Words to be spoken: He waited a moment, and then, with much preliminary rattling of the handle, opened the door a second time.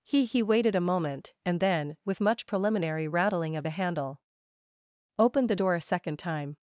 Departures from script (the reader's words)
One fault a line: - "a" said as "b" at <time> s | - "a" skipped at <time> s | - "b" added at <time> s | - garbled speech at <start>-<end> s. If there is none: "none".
- "he" added at 0.2 s